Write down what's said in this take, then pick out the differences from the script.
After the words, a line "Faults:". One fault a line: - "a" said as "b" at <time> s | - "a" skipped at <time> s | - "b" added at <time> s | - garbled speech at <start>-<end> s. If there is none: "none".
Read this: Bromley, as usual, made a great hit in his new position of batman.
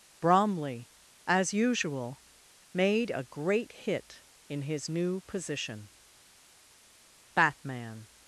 Bromley, as usual, made a great hit in his new position batman.
Faults:
- "of" skipped at 5.9 s